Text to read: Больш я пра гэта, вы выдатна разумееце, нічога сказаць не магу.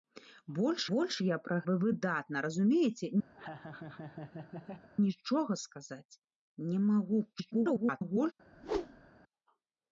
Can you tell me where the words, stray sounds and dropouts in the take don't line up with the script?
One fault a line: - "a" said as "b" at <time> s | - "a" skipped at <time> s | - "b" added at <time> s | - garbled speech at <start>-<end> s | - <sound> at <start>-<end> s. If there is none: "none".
- "больш" added at 0.9 s
- "гэта" skipped at 1.6 s
- laugh at 3.3-4.9 s
- garbled speech at 7.3-8.3 s
- whoosh at 8.5-9.1 s